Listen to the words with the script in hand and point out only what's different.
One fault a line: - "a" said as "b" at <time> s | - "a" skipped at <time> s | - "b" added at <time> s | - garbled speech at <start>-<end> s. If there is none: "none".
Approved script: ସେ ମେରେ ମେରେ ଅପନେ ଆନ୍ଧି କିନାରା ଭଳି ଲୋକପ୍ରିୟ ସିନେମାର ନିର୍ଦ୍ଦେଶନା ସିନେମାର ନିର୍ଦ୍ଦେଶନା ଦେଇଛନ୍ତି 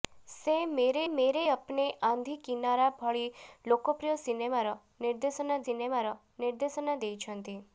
none